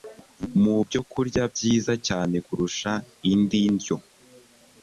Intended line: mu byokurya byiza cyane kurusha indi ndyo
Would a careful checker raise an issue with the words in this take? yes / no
no